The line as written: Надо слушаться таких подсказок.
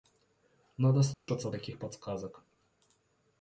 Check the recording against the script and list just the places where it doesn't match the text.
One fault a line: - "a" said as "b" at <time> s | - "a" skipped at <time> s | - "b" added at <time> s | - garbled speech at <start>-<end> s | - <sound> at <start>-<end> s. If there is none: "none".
- dropout at 1.1-1.3 s